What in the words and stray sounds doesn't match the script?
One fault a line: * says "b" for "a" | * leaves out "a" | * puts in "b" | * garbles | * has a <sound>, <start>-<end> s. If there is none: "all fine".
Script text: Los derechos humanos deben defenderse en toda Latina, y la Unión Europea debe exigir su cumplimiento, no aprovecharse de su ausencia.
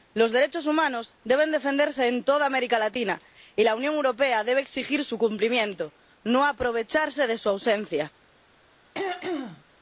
* puts in "América"
* has a throat clearing, 8.9-9.6 s